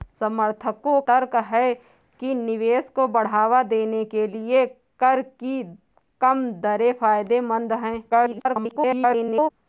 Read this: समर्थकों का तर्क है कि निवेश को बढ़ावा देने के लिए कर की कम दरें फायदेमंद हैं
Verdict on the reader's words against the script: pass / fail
fail